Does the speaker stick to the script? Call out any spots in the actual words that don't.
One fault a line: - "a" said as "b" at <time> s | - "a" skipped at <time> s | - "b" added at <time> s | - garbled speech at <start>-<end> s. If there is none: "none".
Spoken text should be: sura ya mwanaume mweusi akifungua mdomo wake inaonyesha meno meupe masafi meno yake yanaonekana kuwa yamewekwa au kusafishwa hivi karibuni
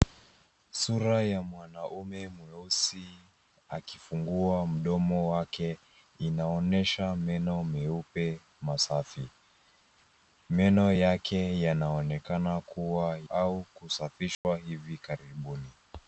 - "yamewekwa" skipped at 13.2 s